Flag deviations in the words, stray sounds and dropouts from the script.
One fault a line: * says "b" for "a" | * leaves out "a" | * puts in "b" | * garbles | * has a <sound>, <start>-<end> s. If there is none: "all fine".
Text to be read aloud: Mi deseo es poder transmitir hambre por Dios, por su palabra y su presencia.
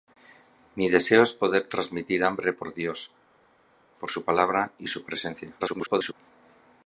* garbles